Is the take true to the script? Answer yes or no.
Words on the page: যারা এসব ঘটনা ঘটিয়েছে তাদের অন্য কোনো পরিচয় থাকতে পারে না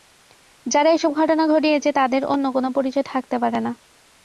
yes